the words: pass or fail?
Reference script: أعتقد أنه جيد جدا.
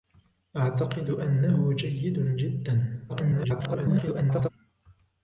fail